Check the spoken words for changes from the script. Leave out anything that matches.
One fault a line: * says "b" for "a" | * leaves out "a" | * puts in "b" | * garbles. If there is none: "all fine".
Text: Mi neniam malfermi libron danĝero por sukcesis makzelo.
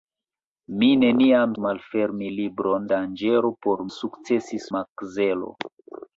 all fine